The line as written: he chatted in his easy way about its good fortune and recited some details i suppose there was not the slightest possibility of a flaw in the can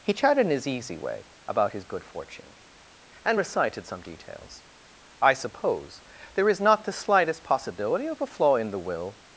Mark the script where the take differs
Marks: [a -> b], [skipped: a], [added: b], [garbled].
he chatted in his easy way about [its -> his] good fortune and recited some details i suppose there [was -> is] not the slightest possibility of a flaw in the [can -> will]